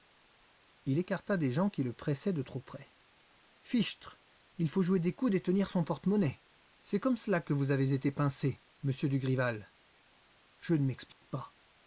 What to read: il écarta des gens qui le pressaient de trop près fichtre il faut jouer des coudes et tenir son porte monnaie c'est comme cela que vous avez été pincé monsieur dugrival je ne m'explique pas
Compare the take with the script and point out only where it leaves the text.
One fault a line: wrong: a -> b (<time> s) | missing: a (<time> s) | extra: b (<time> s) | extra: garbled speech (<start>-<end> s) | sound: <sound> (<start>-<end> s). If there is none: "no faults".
sound: dropout (11.1-11.2 s)